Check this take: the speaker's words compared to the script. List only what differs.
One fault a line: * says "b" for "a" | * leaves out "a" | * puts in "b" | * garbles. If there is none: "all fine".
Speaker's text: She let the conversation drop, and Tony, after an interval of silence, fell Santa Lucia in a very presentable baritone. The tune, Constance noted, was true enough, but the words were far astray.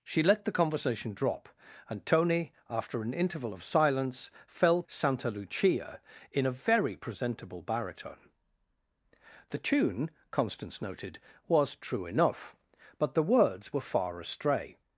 all fine